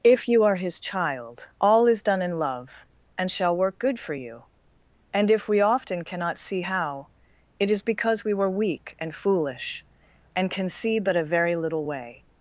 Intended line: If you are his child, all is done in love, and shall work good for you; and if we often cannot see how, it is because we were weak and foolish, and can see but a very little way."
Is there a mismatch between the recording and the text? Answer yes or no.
no